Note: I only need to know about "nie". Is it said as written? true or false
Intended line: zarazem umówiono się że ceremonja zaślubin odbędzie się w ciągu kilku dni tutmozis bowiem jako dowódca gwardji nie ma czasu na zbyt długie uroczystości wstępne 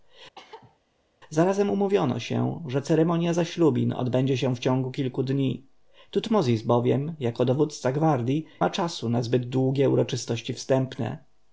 false